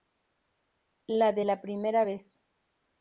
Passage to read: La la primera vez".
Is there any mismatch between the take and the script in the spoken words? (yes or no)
yes